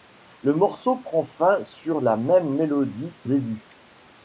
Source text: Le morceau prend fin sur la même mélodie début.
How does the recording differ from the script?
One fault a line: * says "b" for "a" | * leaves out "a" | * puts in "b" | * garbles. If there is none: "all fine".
all fine